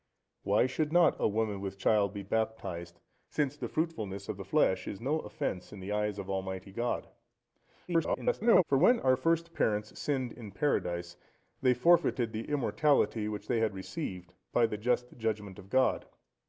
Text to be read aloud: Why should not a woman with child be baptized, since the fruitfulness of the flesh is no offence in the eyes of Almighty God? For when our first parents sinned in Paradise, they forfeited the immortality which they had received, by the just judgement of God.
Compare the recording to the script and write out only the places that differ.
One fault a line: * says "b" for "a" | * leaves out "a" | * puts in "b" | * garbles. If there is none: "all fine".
* garbles